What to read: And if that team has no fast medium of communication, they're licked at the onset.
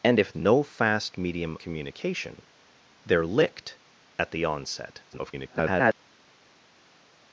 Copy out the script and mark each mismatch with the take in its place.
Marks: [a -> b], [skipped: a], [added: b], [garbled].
And if [skipped: that team has] no fast medium [skipped: of] communication, they're licked at the onset. [garbled]